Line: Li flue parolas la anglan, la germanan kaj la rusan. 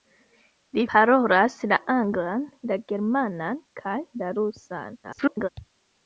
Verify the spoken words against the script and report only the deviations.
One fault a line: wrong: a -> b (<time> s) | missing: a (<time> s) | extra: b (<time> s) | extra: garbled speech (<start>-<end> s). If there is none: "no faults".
missing: flue (0.8 s)
extra: garbled speech (5.0-5.5 s)